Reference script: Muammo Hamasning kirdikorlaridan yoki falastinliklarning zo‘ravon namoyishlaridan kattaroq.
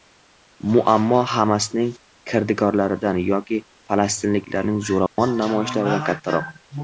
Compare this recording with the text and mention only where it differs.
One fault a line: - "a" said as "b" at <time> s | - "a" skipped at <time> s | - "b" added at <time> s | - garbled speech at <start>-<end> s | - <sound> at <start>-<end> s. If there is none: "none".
- dropout at 5.1-5.2 s